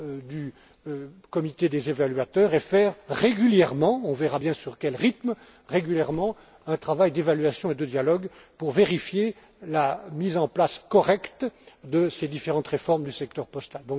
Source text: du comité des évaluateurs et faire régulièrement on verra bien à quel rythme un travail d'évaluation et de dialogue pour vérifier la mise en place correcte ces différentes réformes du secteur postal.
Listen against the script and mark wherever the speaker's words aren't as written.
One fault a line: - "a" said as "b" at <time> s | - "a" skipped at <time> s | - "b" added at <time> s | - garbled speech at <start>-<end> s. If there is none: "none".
- "de" added at 11.8 s